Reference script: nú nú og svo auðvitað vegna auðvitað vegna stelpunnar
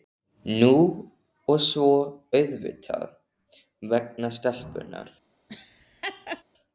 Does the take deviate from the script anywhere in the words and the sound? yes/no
yes